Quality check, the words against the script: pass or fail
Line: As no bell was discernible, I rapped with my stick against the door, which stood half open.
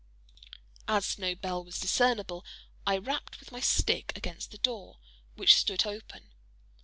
fail